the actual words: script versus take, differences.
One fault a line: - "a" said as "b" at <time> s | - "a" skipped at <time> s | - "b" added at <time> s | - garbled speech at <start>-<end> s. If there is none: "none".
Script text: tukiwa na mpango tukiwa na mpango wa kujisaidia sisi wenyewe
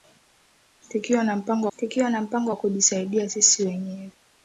none